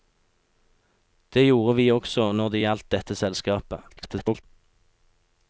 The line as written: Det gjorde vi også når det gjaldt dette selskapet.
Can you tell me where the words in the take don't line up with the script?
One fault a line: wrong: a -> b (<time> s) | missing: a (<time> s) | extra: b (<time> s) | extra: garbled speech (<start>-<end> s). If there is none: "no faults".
extra: garbled speech (3.9-4.4 s)